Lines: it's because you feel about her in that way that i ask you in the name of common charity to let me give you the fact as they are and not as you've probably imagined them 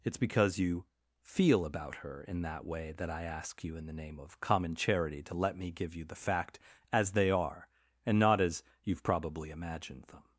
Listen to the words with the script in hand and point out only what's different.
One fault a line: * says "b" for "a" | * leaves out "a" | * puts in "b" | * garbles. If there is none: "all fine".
all fine